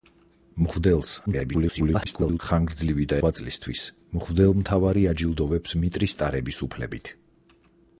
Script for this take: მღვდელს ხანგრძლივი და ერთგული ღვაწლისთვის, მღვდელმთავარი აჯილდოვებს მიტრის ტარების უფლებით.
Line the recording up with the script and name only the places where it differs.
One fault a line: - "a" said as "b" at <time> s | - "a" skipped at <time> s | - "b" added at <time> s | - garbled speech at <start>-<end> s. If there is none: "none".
- garbled speech at 1.3-2.4 s
- "ერთგული" skipped at 3.2 s